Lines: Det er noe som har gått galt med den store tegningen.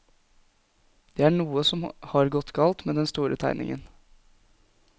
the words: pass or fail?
pass